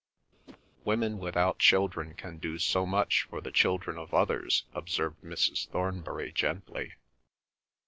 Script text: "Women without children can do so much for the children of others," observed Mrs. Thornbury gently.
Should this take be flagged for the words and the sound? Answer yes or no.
yes